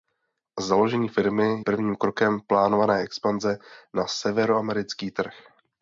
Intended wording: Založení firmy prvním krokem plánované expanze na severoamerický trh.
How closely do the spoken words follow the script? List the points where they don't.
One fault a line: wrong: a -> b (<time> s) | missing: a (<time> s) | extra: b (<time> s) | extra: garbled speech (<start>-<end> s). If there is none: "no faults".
no faults